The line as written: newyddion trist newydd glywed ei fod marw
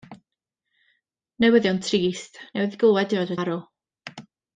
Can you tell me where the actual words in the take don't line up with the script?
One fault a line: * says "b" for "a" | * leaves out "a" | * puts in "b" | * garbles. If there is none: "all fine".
all fine